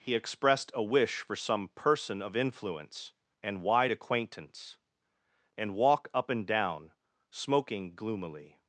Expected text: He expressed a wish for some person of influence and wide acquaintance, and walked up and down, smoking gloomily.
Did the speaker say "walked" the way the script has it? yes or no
no